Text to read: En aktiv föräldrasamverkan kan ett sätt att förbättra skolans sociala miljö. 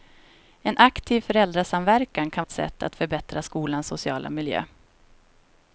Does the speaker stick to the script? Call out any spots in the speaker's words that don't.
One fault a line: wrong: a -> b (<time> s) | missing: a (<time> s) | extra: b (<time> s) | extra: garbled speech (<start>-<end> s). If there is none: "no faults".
no faults